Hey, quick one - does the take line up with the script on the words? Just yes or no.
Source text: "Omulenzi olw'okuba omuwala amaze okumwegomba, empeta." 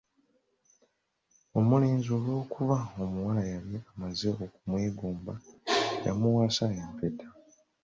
no